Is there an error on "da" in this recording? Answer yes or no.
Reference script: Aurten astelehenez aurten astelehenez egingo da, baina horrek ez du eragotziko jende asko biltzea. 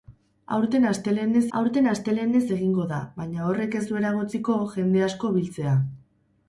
no